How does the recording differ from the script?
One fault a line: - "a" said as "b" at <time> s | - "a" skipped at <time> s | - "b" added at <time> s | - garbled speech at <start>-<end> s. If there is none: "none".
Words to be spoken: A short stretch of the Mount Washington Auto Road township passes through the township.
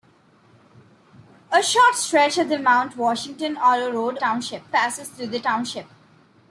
none